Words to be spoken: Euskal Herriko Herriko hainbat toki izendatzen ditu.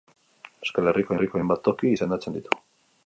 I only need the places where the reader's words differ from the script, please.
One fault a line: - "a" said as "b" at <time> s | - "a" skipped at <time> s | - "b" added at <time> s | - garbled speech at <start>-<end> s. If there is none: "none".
none